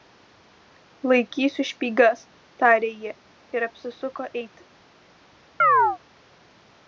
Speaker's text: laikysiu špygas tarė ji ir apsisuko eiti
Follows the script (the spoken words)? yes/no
yes